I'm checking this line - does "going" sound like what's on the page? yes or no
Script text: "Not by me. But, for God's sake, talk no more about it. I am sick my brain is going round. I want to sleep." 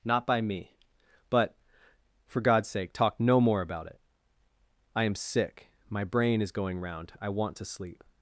yes